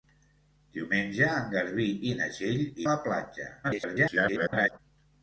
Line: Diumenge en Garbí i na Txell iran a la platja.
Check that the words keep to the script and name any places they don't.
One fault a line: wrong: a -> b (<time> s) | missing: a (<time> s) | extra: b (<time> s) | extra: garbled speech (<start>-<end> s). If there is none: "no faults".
missing: iran (2.7 s)
extra: garbled speech (3.6-4.8 s)